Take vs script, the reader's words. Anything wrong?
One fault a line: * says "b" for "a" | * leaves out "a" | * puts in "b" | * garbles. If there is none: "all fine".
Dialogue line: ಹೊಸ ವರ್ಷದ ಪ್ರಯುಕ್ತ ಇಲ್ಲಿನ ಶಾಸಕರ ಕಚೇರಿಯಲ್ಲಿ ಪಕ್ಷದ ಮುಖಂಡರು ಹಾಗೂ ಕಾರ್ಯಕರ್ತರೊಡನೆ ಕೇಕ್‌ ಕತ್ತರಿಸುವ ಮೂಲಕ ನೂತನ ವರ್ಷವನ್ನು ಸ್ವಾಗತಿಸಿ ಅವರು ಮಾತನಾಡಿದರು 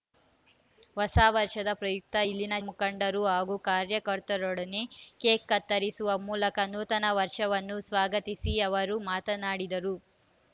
* leaves out "ಶಾಸಕರ ಕಚೇರಿಯಲ್ಲಿ ಪಕ್ಷದ"